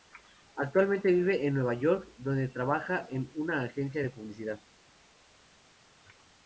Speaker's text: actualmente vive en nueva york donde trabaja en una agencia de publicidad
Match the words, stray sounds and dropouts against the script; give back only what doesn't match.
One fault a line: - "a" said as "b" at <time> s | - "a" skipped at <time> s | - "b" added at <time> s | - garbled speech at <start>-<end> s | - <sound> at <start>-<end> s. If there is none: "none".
none